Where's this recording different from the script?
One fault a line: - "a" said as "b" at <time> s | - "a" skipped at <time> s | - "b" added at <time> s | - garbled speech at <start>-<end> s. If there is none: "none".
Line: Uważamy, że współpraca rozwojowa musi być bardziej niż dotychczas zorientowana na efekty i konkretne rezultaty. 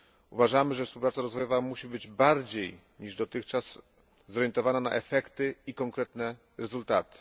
none